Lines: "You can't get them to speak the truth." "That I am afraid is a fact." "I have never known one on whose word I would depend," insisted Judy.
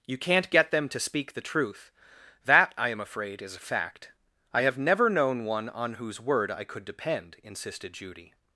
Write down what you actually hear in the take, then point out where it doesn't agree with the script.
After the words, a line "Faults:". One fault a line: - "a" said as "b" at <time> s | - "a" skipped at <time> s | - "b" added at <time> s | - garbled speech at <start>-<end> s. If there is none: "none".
"You can't get them to speak the truth." "That I am afraid is a fact." "I have never known one on whose word I could depend," insisted Judy.
Faults:
- "would" said as "could" at 6.6 s